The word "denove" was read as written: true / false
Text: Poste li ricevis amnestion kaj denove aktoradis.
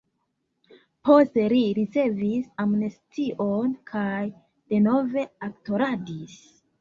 true